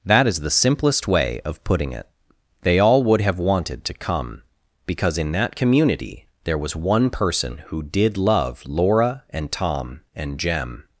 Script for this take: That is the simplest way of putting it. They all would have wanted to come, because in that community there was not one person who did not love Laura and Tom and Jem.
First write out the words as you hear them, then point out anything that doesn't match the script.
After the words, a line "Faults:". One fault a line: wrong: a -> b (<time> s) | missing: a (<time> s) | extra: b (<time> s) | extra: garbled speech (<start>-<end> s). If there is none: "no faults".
That is the simplest way of putting it. They all would have wanted to come, because in that community there was one person who did love Laura and Tom and Jem.
Faults:
missing: not (6.8 s)
missing: not (8.2 s)